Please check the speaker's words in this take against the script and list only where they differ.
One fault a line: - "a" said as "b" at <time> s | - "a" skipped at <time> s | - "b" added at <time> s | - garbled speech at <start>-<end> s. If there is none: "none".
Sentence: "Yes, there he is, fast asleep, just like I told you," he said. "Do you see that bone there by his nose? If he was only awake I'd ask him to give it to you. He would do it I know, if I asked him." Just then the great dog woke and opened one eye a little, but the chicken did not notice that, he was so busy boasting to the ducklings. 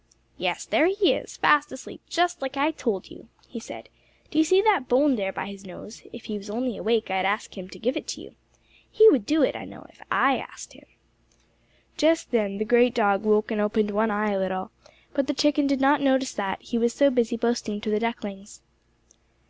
none